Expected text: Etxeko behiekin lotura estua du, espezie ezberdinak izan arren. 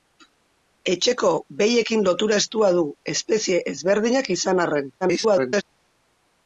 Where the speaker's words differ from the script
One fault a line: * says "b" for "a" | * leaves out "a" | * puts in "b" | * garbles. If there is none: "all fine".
* garbles